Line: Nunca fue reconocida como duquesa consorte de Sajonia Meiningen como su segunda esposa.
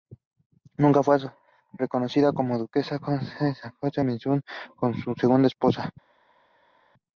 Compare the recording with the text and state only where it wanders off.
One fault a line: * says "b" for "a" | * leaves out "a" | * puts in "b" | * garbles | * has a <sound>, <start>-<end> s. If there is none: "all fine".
all fine